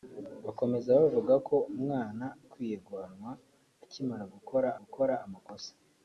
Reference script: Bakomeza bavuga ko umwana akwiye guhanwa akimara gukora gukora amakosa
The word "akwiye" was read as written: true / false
true